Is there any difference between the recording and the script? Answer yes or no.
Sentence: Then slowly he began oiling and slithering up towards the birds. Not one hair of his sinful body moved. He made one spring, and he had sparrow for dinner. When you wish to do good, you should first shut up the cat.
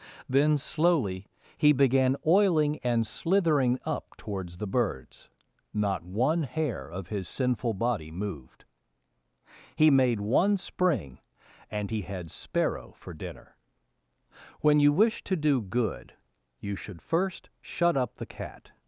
no